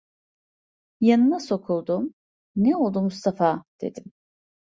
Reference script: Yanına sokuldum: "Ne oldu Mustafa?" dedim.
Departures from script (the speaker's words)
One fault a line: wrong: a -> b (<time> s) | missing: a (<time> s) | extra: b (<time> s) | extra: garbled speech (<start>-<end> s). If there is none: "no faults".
no faults